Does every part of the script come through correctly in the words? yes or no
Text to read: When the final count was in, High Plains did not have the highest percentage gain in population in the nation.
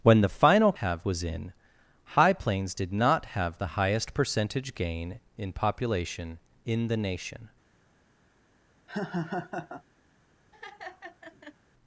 no